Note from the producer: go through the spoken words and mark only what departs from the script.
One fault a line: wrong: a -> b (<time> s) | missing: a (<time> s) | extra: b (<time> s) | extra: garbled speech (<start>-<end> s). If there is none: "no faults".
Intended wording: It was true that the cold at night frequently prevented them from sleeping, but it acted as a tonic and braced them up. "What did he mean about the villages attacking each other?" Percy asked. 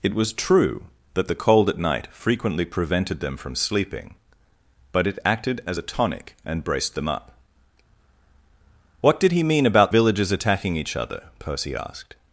missing: the (9.9 s)